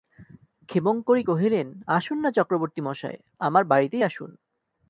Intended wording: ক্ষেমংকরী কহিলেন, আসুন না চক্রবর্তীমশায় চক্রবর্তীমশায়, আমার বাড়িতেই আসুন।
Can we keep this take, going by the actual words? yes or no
no